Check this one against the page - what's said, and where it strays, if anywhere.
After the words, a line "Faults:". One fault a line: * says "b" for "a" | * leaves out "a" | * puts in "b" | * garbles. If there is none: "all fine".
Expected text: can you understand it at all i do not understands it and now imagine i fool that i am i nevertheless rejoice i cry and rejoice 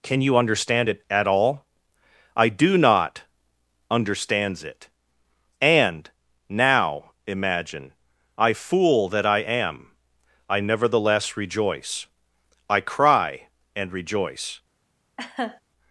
can you understand it at all i do not understands it and now imagine i fool that i am i nevertheless rejoice i cry and rejoice
Faults:
all fine